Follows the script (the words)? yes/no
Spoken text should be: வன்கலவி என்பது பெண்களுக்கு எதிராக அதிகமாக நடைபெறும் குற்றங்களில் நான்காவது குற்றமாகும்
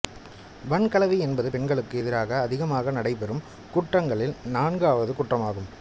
yes